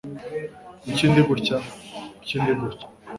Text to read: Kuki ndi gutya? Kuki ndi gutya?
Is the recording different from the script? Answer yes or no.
no